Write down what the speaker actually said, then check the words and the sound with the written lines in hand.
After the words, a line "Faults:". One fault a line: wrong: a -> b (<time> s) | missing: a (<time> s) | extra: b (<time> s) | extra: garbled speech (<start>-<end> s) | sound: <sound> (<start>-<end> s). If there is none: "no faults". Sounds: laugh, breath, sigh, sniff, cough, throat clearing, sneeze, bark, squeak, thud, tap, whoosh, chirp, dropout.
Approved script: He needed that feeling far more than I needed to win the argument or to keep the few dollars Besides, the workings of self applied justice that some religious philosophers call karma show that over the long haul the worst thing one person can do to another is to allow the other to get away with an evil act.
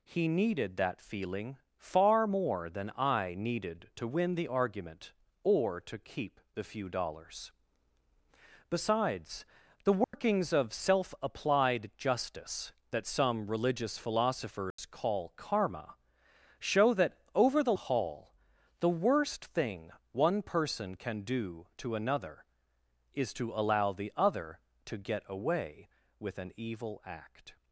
He needed that feeling far more than I needed to win the argument or to keep the few dollars Besides, the workings of self applied justice that some religious philosophers call karma show that over the haul the worst thing one person can do to another is to allow the other to get away with an evil act.
Faults:
sound: dropout (10.0-10.1 s)
sound: dropout (14.7-14.8 s)
missing: long (17.7 s)